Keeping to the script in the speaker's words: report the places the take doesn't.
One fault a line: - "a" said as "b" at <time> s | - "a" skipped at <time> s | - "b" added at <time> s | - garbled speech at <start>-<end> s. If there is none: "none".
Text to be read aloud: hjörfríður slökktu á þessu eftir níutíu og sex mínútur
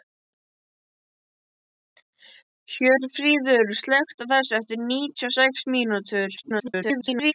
- garbled speech at 6.4-7.3 s